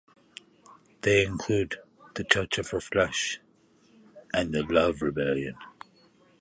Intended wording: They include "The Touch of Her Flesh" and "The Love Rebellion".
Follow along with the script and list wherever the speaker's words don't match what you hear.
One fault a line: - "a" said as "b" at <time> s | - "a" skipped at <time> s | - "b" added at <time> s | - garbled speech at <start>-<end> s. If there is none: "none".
none